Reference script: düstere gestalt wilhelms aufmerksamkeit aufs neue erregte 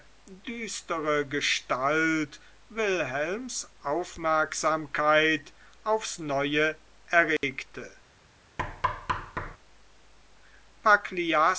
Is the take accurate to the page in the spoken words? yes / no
yes